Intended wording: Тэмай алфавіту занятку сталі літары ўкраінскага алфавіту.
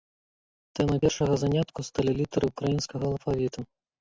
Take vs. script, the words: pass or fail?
fail